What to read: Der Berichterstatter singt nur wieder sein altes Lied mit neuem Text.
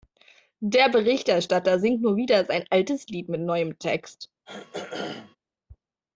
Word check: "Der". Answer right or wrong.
right